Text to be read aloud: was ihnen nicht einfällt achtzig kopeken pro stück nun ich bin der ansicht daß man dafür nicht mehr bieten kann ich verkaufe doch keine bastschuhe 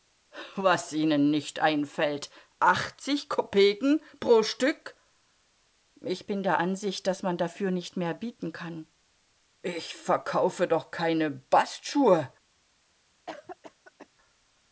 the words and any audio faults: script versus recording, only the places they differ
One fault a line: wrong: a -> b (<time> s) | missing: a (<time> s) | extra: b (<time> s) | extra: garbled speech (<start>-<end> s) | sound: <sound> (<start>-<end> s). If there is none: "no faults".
missing: nun (5.0 s)
sound: cough (13.3-14.1 s)